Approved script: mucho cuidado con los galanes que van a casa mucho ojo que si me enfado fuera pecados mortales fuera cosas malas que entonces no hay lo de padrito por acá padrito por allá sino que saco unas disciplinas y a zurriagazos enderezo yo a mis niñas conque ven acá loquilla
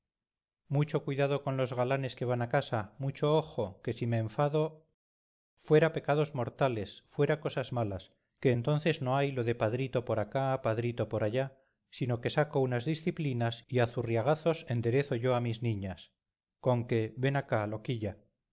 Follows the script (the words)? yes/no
yes